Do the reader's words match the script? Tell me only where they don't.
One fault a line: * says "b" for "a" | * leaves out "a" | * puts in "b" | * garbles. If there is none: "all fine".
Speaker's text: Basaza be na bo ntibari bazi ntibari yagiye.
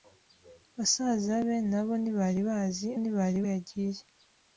all fine